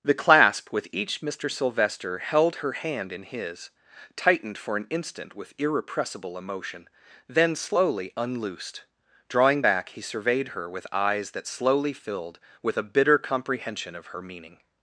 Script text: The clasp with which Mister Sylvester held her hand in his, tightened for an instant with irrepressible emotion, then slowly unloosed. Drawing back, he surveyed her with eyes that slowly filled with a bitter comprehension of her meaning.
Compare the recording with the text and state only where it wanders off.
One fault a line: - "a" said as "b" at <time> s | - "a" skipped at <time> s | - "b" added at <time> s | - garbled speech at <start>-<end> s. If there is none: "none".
- "which" said as "each" at 0.9 s